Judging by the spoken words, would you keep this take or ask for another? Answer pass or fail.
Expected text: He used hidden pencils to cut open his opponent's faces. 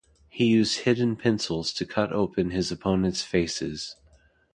pass